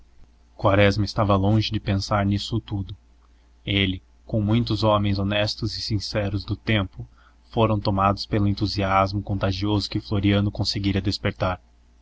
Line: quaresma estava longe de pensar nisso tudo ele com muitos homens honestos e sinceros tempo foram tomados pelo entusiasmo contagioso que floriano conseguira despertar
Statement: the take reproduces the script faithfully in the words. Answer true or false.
false